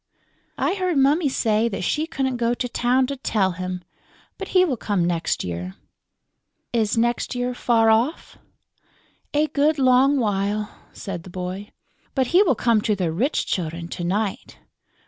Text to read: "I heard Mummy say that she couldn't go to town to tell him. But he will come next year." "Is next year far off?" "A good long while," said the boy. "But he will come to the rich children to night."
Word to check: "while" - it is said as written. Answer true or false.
true